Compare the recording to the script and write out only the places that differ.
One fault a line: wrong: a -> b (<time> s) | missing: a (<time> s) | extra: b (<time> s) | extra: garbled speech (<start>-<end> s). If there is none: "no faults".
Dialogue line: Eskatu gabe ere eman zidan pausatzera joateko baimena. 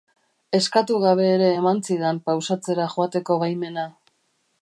no faults